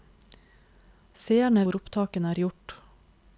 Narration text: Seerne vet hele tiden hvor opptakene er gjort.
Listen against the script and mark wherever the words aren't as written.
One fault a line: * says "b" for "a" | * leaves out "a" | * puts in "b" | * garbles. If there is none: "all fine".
* leaves out "vet hele tiden"